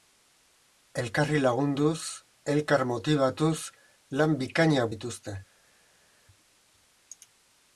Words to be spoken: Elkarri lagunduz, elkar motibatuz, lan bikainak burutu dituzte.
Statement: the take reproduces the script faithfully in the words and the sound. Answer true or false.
false